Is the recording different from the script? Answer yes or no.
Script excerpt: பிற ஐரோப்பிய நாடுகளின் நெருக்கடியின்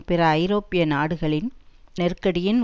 no